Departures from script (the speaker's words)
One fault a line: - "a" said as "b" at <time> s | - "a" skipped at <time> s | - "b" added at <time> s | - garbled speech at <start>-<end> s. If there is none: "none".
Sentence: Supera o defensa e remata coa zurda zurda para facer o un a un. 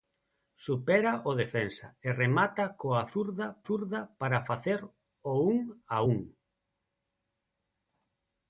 none